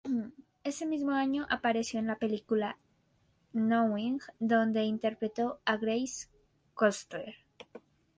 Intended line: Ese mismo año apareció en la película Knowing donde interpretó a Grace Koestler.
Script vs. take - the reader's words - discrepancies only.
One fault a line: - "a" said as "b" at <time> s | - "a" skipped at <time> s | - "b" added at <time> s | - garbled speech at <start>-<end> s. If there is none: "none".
none